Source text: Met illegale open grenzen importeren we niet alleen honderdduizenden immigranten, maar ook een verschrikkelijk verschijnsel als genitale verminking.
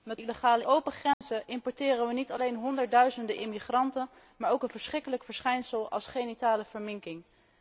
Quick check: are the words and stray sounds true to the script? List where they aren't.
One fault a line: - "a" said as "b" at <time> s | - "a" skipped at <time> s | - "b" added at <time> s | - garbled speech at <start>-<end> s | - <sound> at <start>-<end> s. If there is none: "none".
- dropout at 1.1-1.2 s